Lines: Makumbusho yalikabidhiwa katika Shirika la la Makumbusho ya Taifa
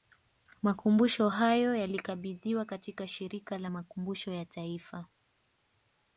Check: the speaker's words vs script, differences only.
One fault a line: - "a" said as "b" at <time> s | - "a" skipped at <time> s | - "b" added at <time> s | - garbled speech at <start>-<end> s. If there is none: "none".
- "hayo" added at 1.3 s
- "la" skipped at 3.7 s